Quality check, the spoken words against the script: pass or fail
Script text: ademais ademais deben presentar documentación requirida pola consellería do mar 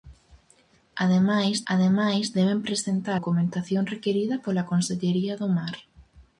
pass